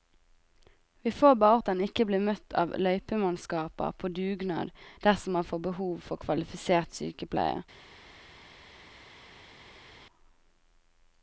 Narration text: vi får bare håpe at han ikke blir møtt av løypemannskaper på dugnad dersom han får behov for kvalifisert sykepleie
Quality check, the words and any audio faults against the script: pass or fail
fail